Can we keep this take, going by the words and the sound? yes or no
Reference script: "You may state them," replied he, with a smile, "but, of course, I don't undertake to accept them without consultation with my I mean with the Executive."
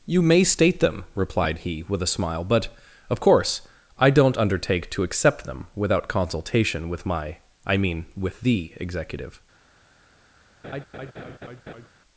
no